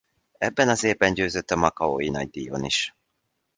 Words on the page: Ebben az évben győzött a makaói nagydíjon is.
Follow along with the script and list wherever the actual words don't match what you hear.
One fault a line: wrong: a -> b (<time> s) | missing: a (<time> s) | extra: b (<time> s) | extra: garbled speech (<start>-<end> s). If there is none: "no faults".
no faults